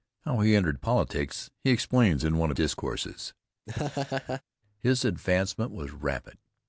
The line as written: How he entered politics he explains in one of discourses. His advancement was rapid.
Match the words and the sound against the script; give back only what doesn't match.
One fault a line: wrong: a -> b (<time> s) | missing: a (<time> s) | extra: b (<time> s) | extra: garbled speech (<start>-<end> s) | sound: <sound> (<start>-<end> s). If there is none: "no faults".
sound: laugh (3.7-4.4 s)